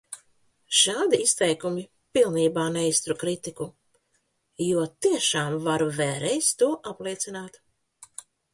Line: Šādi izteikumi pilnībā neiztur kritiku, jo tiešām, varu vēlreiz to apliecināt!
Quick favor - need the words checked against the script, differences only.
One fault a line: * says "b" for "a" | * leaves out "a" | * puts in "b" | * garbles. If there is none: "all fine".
all fine